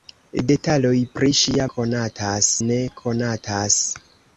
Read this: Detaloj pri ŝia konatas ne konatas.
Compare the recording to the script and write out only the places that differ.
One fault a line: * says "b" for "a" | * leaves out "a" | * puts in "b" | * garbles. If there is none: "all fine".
all fine